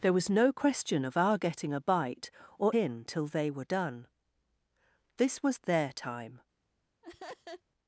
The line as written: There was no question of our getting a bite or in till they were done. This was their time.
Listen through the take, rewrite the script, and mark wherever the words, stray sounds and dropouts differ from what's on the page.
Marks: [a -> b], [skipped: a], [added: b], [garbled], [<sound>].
There was no question of our getting a bite or in till they were done. This was their time. [laugh]